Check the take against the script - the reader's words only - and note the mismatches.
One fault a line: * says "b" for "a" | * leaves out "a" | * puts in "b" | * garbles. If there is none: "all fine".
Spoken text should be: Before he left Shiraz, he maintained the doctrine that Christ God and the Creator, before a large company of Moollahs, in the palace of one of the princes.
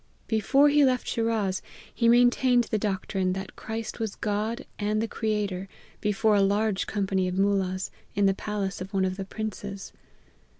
* puts in "was"